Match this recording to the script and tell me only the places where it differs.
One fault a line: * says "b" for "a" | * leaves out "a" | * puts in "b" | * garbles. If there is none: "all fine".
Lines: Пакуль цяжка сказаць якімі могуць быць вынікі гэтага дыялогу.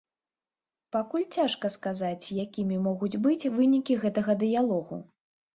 all fine